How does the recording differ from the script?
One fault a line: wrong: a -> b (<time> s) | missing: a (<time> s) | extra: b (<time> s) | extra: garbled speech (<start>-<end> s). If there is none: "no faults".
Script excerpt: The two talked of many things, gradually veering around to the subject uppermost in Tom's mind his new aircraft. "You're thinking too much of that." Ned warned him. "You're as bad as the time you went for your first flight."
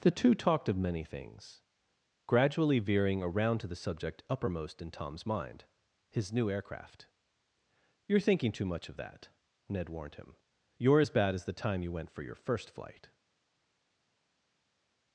no faults